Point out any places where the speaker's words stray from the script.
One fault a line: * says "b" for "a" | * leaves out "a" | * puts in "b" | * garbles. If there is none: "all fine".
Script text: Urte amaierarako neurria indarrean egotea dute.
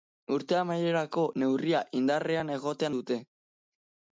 all fine